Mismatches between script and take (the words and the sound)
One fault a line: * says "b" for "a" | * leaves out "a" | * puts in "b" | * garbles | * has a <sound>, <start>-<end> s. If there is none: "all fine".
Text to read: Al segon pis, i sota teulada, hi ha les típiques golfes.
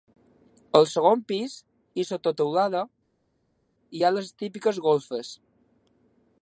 all fine